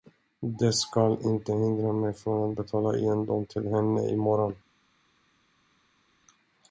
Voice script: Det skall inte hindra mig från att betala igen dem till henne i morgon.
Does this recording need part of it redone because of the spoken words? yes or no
no